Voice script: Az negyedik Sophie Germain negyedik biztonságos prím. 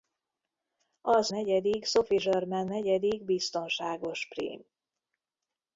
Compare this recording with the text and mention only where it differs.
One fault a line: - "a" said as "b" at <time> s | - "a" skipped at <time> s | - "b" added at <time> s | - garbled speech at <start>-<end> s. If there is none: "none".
none